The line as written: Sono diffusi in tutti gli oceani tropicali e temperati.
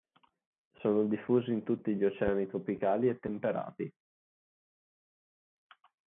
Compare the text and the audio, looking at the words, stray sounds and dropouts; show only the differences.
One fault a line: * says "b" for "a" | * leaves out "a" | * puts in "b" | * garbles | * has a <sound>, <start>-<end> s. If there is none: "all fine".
all fine